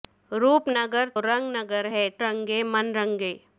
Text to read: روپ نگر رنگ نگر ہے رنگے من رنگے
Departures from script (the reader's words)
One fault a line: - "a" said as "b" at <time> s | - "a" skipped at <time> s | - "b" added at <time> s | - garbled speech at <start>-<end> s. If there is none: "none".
none